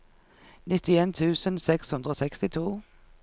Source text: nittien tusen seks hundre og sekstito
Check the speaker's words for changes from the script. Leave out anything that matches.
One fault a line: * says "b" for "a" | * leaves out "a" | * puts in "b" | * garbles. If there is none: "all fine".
all fine